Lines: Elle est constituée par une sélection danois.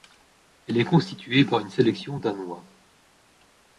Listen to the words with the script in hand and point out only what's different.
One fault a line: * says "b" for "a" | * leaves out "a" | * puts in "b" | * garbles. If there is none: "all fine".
all fine